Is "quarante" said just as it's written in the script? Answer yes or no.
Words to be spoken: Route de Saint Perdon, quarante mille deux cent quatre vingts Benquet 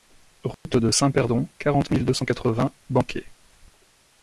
yes